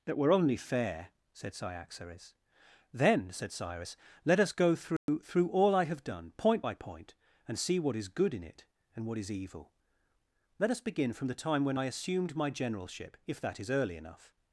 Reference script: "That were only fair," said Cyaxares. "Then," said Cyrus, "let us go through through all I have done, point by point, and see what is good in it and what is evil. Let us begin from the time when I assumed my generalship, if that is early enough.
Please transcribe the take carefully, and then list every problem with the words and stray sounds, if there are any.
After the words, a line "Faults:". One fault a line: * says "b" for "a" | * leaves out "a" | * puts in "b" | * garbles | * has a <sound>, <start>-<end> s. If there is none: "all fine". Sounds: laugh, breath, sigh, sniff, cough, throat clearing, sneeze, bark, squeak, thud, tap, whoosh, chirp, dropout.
"That were only fair," said Cyaxares. "Then," said Cyrus, "let us go through through all I have done, point by point, and see what is good in it and what is evil. Let us begin from the time when I assumed my generalship, if that is early enough.
Faults:
* has a dropout, 5.0-5.1 s